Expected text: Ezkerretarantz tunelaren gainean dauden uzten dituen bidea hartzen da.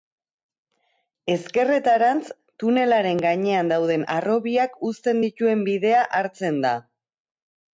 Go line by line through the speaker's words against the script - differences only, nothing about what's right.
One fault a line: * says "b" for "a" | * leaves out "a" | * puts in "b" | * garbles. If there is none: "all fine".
* puts in "harrobiak"